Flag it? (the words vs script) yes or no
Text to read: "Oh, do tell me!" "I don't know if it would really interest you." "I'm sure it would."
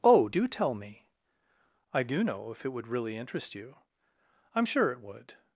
yes